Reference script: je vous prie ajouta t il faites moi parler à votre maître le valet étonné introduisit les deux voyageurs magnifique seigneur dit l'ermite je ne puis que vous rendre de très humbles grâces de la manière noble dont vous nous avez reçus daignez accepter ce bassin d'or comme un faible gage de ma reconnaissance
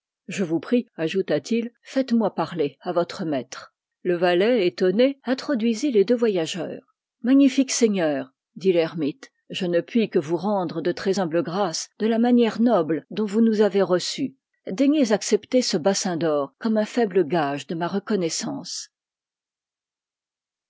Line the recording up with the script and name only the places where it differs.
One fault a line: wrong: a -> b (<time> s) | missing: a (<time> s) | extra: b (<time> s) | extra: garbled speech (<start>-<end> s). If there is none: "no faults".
no faults